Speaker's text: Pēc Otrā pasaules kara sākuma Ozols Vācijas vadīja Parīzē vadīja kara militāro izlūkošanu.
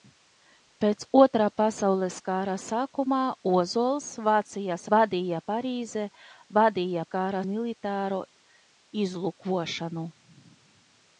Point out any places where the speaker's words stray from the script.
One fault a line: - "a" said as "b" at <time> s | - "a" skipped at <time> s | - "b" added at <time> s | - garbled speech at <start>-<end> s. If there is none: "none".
none